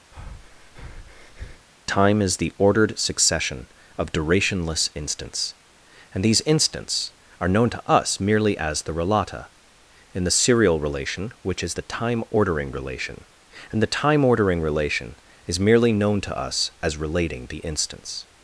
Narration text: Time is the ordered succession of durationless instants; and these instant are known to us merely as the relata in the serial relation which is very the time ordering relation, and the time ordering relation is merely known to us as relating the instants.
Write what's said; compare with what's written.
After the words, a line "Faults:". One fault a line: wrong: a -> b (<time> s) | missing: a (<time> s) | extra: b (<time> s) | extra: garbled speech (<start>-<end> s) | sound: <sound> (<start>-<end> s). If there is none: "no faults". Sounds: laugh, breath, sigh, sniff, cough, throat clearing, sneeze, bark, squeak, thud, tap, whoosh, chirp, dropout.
Time is the ordered succession of durationless instants; and these instants are known to us merely as the relata in the serial relation which is the time ordering relation, and the time ordering relation is merely known to us as relating the instants.
Faults:
sound: breath (0.1-1.7 s)
wrong: instant -> instants (6.4 s)
missing: very (11.8 s)